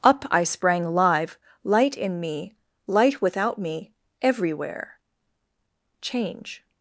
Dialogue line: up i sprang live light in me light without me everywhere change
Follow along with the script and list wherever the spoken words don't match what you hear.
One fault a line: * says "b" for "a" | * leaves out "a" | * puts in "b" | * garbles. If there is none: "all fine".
all fine